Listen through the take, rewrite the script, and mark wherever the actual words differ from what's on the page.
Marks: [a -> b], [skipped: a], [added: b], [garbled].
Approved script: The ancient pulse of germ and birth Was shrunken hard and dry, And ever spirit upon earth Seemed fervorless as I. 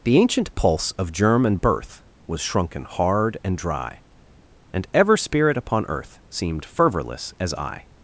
The ancient pulse of germ and birth Was shrunken hard and dry, And ever spirit upon earth Seemed fervorless as I.